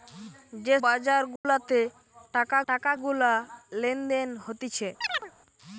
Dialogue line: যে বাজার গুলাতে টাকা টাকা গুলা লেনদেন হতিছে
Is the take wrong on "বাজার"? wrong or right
right